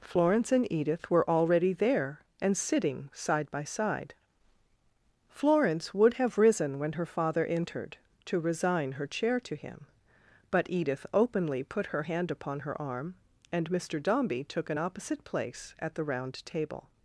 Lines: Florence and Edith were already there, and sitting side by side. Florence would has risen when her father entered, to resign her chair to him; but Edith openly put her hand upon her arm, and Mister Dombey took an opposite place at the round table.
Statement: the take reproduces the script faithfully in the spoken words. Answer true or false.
false